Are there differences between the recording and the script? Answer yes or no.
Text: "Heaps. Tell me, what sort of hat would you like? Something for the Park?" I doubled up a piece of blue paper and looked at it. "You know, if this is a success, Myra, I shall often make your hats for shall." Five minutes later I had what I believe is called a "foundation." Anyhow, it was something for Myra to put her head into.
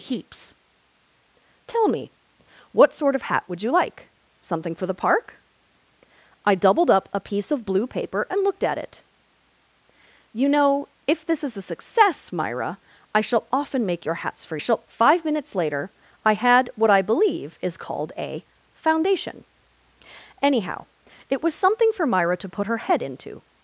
no